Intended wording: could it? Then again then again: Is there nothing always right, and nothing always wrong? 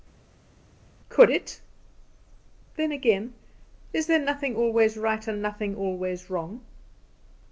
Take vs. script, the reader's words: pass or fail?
fail